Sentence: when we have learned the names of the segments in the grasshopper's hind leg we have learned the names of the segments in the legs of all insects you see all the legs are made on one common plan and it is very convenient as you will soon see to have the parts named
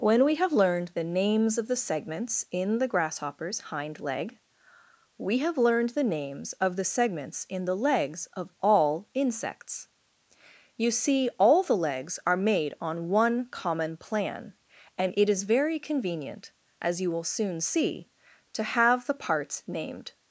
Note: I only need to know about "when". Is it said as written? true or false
true